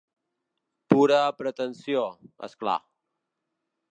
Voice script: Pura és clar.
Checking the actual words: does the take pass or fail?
fail